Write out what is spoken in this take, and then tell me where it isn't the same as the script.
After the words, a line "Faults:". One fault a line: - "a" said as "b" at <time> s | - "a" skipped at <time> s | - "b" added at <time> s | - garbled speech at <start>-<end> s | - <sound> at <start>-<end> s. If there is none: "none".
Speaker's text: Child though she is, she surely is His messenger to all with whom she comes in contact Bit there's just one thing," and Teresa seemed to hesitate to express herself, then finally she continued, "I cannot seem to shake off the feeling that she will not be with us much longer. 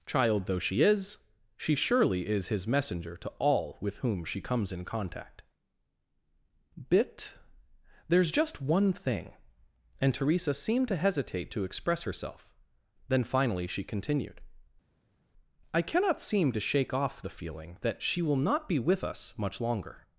Child though she is, she surely is His messenger to all with whom she comes in contact Bit there's just one thing," and Teresa seemed to hesitate to express herself, then finally she continued, "I cannot seem to shake off the feeling that she will not be with us much longer.
Faults:
none